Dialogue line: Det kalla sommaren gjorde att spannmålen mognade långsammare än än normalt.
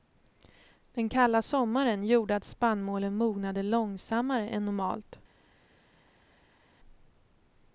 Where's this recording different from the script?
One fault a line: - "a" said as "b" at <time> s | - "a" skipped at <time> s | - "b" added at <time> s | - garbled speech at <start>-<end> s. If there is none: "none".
- "Det" said as "Den" at 0.9 s
- "än" skipped at 4.7 s